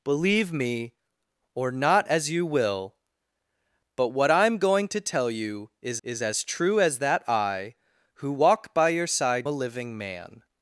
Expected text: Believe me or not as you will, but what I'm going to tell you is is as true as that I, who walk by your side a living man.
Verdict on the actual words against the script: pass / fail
pass